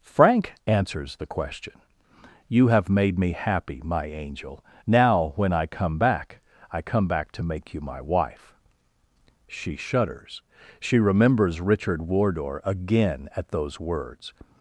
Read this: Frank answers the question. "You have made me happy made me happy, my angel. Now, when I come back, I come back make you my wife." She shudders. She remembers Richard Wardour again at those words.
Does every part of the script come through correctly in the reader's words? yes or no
no